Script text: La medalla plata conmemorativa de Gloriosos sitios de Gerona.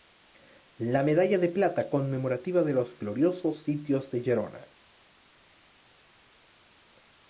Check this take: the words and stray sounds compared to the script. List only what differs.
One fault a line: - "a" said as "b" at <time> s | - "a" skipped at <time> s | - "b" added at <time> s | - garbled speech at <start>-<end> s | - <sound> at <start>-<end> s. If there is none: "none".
- "de" added at 1.4 s
- "los" added at 2.7 s